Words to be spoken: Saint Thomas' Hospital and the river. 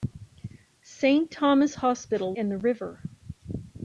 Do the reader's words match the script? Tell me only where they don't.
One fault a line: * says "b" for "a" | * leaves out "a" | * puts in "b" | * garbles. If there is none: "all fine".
all fine